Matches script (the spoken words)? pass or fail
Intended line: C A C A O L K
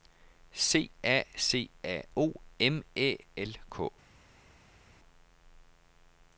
fail